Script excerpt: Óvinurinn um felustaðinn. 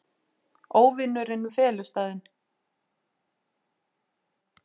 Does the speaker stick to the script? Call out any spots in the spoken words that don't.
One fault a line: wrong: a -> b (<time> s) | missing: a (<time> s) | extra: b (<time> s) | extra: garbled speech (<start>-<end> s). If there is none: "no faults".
no faults